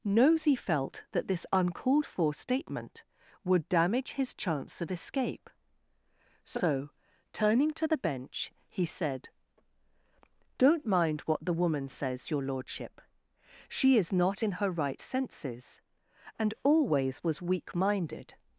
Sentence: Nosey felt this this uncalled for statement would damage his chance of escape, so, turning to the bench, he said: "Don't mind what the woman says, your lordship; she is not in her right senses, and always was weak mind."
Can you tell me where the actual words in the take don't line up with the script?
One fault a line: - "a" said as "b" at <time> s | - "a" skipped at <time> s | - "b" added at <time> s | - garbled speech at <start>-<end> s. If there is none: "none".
- "this" said as "that" at 1.1 s
- "mind" said as "minded" at 17.7 s